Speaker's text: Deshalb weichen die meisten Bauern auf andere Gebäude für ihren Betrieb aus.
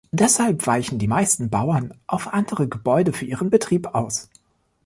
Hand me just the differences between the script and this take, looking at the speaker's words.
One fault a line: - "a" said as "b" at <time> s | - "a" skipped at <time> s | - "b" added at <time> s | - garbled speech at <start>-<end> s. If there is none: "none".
none